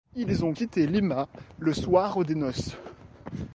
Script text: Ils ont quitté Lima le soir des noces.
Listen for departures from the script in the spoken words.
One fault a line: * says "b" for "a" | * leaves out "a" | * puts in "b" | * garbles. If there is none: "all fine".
all fine